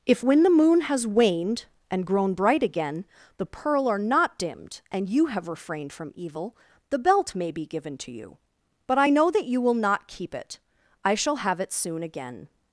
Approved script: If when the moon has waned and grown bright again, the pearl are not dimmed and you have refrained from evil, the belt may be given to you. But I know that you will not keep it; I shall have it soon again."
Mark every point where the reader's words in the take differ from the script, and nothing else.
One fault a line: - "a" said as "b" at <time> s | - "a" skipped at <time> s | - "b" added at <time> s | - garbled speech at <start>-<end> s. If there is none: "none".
none